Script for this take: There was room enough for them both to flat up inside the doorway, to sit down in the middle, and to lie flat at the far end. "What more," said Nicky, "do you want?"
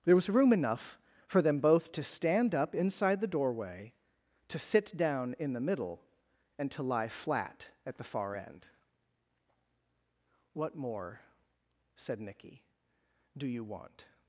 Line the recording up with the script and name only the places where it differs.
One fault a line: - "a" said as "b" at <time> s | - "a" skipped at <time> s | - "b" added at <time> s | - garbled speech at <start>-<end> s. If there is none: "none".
- "flat" said as "stand" at 2.0 s